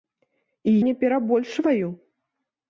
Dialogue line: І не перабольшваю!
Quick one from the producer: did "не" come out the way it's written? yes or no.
yes